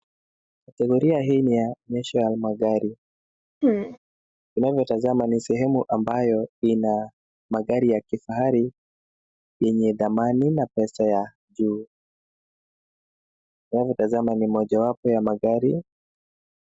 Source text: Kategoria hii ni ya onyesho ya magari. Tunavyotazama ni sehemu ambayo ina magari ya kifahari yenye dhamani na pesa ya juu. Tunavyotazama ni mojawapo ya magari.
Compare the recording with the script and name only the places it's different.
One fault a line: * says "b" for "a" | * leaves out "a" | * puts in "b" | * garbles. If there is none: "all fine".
all fine